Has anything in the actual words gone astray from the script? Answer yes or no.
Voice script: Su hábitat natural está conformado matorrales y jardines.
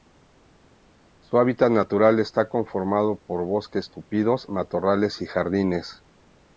yes